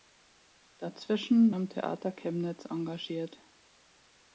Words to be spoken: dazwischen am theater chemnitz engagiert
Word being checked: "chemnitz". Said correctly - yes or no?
yes